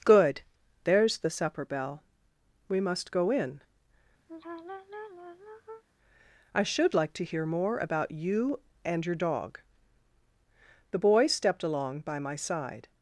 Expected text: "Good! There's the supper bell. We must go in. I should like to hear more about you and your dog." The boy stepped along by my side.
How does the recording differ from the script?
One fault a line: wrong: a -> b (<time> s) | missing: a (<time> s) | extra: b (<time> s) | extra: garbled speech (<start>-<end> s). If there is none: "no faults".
no faults